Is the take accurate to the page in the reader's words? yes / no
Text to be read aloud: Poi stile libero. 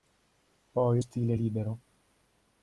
yes